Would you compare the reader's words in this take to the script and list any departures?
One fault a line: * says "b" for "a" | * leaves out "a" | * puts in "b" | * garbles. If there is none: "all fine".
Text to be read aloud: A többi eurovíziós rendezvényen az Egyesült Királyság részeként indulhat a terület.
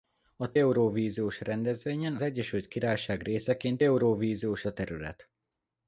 * leaves out "többi"
* leaves out "az"
* says "eurovíziós" for "indulhat"